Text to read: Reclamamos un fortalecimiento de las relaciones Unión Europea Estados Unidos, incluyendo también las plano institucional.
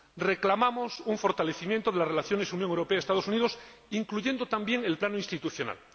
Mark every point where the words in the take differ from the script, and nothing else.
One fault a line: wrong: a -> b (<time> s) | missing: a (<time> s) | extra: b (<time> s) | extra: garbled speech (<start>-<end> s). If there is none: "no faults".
wrong: las -> el (4.8 s)